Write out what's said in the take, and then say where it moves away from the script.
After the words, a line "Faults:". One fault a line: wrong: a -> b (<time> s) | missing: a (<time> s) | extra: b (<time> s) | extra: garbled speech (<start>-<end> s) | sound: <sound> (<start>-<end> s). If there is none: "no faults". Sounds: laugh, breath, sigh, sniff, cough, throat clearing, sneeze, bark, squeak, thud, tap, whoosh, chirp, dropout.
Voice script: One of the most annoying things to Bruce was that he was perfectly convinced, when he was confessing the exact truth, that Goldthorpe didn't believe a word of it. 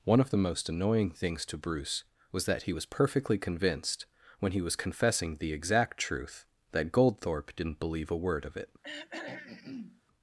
One of the most annoying things to Bruce was that he was perfectly convinced, when he was confessing the exact truth, that Goldthorpe didn't believe a word of it.
Faults:
sound: throat clearing (8.8-10.0 s)